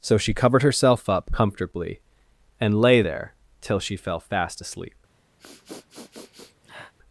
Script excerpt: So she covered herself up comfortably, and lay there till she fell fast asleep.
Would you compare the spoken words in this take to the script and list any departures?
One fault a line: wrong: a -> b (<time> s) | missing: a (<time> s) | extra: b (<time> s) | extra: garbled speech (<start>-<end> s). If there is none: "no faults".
no faults